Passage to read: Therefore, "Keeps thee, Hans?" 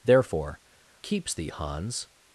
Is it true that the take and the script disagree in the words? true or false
false